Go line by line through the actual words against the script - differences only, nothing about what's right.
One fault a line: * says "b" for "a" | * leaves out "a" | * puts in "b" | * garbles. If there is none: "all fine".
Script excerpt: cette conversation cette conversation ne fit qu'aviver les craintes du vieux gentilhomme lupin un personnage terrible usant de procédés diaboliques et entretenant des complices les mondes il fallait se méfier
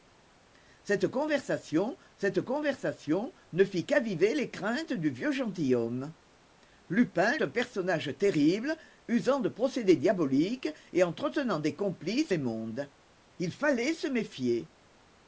all fine